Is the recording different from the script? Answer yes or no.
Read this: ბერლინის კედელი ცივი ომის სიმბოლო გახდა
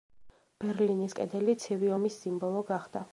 no